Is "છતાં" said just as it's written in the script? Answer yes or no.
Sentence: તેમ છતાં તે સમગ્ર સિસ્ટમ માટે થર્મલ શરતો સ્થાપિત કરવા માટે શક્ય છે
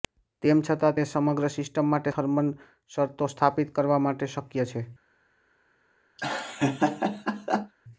yes